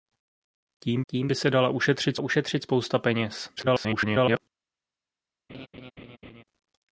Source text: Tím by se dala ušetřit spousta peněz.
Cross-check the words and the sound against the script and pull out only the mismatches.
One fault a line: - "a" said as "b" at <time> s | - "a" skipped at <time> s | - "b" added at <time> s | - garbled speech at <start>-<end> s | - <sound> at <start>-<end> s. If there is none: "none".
- "tím" added at 1.1 s
- "ušetřit" added at 2.2 s
- garbled speech at 3.6-4.4 s
- laugh at 5.5-6.4 s